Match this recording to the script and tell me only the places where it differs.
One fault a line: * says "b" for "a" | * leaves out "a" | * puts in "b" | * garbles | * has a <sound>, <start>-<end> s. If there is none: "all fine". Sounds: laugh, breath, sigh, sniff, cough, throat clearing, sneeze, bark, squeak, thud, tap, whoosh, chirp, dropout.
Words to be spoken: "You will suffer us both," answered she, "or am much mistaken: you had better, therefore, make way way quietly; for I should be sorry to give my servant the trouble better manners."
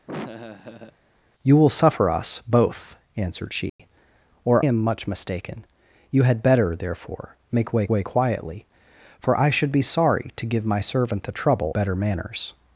* has a laugh, 0.1-1.0 s
* has a dropout, 3.7-3.8 s